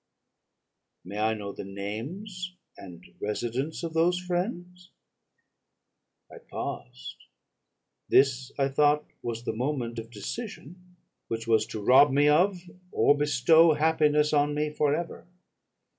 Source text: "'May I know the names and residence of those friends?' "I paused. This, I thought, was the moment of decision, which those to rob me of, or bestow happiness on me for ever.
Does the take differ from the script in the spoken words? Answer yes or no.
yes